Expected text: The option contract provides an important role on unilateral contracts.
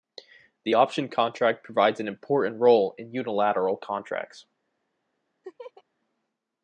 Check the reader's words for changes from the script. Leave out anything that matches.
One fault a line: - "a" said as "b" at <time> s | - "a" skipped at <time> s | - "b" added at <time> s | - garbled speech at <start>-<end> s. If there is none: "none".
- "on" said as "in" at 3.0 s